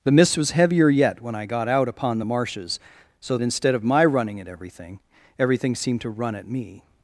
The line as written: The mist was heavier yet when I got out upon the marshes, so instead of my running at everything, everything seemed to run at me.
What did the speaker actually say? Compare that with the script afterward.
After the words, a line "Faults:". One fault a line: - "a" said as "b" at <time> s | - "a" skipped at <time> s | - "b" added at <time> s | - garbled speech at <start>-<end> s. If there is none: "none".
The mist was heavier yet when I got out upon the marshes, so instead of my running at everything, everything seemed to run at me.
Faults:
none